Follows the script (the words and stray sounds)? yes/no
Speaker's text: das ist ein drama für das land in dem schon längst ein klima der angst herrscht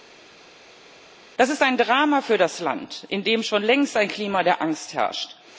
yes